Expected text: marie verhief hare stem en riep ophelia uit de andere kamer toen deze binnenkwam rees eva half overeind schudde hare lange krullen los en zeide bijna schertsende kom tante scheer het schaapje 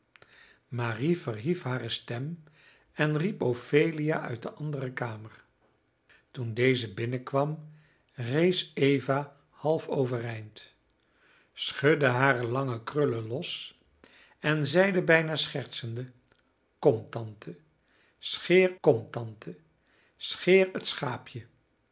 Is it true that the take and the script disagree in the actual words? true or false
true